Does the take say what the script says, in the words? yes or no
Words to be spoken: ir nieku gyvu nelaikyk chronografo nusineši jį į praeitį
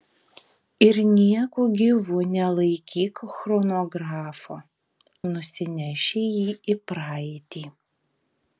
yes